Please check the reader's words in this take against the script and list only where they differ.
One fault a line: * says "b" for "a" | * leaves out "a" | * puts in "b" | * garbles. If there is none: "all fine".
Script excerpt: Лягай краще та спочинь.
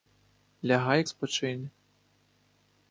* leaves out "краще та"